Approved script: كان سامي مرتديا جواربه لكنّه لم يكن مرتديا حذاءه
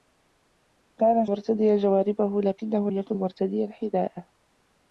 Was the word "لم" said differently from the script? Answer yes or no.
yes